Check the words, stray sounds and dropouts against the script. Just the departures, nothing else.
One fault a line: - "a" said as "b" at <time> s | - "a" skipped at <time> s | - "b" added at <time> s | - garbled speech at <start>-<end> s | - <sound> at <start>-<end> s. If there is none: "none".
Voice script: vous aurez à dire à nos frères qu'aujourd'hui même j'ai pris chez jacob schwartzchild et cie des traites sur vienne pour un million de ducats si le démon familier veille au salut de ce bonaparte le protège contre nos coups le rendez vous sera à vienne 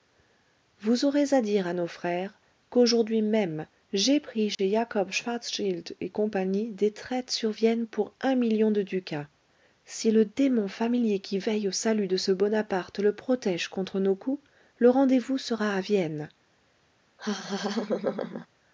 - dropout at 4.5-4.6 s
- "qui" added at 11.2 s
- laugh at 17.2-18.5 s